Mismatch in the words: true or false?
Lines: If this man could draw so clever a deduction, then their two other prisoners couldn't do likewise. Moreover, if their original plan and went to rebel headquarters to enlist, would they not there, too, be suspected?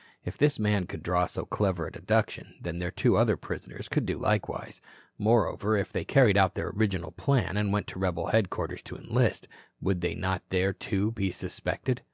true